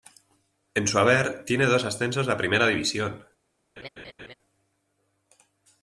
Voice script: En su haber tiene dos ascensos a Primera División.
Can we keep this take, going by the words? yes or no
yes